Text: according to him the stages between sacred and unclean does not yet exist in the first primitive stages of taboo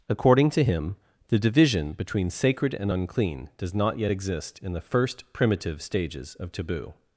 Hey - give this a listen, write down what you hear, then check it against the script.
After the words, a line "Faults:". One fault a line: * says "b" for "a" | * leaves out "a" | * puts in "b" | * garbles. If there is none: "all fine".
according to him the division between sacred and unclean does not yet exist in the first primitive stages of taboo
Faults:
* says "division" for "stages"